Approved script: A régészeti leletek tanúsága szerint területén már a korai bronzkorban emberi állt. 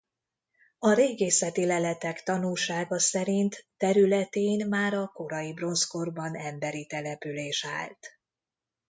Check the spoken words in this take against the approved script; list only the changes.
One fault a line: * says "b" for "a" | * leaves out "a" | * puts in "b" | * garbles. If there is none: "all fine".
* puts in "település"